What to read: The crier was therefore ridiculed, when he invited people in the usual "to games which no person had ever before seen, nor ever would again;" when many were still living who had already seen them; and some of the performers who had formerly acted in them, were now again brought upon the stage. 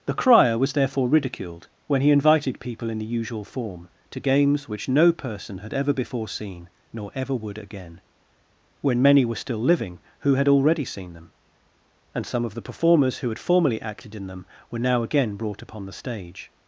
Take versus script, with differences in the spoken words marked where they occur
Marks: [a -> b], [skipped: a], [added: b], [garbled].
The crier was therefore ridiculed, when he invited people in the usual [added: form] "to games which no person had ever before seen, nor ever would again;" when many were still living who had already seen them; and some of the performers who had formerly acted in them, were now again brought upon the stage.